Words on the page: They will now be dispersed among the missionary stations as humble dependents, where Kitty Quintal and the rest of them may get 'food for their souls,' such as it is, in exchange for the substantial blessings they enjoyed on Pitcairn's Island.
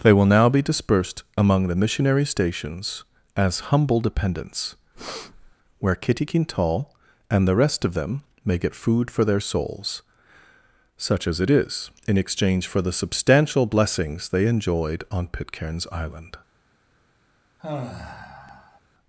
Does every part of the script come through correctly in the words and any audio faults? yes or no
no